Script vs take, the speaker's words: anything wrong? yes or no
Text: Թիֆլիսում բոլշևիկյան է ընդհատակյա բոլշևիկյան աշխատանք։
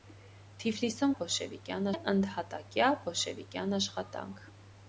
no